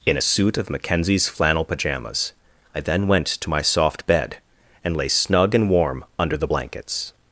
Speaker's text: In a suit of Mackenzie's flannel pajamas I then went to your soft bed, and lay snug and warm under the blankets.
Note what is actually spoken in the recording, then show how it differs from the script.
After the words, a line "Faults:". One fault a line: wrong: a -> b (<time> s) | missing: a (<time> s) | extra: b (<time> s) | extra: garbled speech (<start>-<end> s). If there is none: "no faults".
In a suit of Mackenzie's flannel pajamas I then went to my soft bed, and lay snug and warm under the blankets.
Faults:
wrong: your -> my (3.5 s)